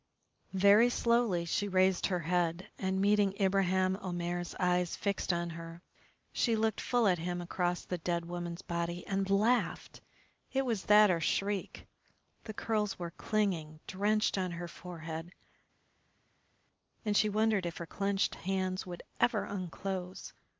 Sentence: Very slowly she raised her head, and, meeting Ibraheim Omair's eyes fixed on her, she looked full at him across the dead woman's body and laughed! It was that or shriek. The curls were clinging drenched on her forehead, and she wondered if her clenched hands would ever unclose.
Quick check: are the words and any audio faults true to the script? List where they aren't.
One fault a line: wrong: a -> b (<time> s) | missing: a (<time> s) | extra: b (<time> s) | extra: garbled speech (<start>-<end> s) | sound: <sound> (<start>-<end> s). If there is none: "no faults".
no faults